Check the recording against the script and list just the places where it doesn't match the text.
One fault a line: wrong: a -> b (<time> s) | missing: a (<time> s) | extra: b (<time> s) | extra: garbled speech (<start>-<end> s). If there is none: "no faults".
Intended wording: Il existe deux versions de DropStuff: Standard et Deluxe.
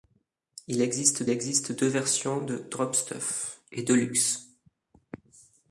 extra: existe (1.3 s)
missing: Standard (3.6 s)